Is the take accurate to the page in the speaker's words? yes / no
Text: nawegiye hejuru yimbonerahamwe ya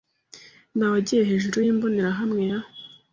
yes